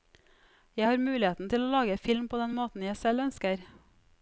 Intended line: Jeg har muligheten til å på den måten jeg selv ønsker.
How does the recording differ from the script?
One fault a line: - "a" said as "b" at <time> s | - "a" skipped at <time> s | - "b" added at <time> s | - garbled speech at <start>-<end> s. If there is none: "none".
- "lage film" added at 1.7 s